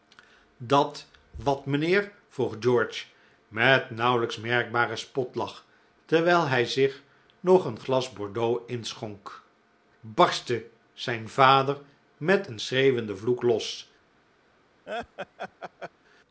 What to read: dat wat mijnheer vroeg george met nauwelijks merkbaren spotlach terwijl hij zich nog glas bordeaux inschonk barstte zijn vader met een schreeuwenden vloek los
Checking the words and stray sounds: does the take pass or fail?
fail